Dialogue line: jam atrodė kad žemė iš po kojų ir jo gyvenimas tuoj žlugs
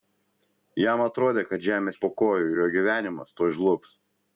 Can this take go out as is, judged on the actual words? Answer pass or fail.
pass